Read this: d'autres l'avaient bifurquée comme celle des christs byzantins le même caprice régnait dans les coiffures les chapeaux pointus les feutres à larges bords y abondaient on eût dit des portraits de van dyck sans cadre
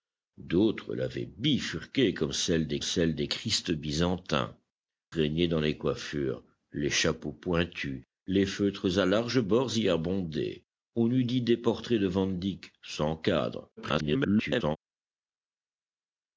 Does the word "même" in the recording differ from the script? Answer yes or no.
yes